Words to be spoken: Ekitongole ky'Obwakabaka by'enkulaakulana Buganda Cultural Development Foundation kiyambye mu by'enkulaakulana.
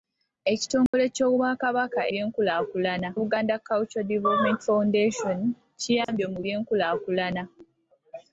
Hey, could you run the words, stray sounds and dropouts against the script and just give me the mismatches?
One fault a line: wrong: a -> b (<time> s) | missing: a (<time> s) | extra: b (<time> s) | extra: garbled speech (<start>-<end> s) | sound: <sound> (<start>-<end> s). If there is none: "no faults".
sound: dropout (0.9-0.9 s)
sound: dropout (6.0-6.1 s)